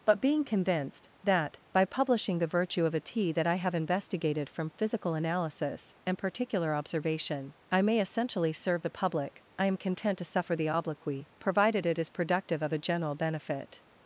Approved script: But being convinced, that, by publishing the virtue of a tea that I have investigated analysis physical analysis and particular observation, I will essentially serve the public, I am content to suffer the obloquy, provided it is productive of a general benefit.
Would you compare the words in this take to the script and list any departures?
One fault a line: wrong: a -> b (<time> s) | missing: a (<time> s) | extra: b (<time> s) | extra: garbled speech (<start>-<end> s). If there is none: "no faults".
wrong: analysis -> from (4.5 s)
wrong: will -> may (7.8 s)